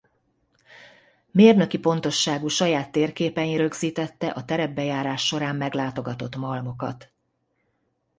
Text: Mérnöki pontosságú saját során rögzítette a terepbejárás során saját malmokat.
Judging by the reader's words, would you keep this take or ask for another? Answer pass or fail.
fail